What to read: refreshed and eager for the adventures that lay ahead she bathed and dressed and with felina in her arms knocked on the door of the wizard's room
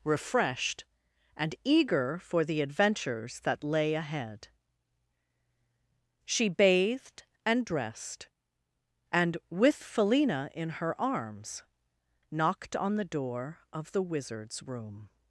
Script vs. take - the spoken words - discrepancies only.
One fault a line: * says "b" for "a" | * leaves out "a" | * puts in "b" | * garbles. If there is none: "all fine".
all fine